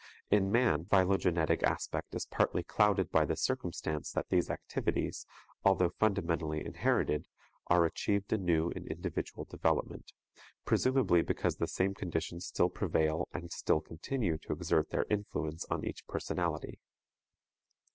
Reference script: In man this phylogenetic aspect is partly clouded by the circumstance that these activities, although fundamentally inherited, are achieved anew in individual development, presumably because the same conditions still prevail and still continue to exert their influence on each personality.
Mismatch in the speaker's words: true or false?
true